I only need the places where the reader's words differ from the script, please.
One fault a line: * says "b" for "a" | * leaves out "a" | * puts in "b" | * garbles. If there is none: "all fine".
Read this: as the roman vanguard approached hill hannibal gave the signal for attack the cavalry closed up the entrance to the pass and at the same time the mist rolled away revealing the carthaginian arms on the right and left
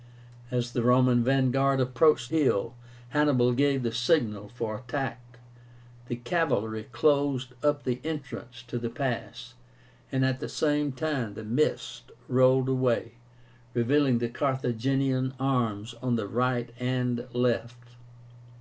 all fine